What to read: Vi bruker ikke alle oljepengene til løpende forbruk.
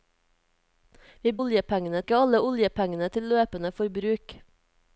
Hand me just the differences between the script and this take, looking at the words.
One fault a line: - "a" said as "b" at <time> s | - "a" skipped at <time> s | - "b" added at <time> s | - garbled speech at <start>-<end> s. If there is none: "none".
- "bruker" said as "oljepengene" at 1.4 s